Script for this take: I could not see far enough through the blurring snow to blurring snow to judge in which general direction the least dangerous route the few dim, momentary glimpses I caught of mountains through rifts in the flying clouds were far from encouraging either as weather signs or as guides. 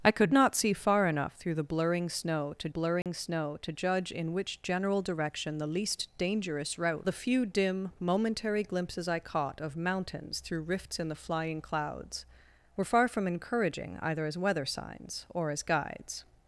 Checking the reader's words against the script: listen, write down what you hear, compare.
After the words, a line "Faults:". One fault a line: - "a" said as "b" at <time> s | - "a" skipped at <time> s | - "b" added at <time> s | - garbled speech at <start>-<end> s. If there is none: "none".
I could not see far enough through the blurring snow to blurring snow to judge in which general direction the least dangerous route the few dim, momentary glimpses I caught of mountains through rifts in the flying clouds were far from encouraging either as weather signs or as guides.
Faults:
none